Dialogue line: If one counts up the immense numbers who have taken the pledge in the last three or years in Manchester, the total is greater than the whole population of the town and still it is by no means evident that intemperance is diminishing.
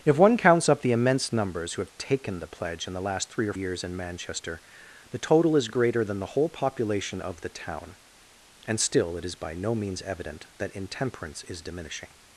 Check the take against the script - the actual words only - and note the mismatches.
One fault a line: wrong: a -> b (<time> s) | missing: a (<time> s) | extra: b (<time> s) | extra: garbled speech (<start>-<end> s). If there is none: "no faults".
no faults